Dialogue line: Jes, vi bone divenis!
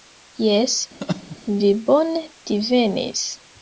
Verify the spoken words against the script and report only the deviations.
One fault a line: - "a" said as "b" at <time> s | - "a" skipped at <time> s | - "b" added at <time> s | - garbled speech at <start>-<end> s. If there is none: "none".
none